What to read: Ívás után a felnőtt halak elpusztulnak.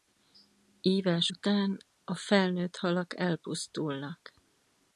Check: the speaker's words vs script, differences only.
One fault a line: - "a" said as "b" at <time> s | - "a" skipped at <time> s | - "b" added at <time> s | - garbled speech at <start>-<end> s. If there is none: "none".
none